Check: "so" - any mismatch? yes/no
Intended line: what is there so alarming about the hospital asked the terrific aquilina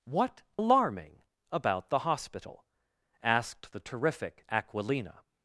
yes